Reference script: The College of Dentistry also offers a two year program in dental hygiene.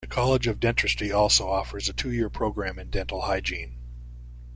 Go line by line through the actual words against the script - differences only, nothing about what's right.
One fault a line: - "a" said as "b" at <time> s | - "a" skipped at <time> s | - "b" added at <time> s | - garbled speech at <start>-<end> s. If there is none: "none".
none